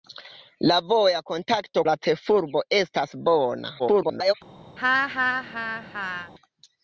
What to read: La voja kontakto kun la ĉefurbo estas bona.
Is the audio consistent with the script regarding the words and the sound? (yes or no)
no